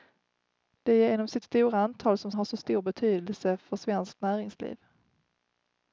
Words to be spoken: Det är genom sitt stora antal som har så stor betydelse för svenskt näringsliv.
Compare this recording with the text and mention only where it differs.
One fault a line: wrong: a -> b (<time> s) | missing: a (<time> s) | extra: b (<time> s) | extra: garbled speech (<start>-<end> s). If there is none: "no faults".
no faults